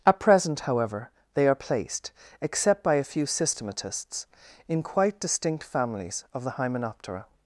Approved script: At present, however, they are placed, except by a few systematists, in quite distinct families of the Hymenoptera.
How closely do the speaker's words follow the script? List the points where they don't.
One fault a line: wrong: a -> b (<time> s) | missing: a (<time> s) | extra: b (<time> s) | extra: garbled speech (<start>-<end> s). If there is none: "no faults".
no faults